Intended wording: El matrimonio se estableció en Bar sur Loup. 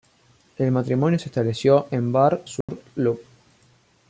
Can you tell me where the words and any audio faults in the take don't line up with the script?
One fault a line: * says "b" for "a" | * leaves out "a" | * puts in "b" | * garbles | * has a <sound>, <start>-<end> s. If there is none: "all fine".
* has a dropout, 2.6-2.7 s